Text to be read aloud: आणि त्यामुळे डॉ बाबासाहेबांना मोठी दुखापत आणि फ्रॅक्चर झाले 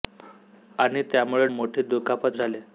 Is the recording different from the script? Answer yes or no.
yes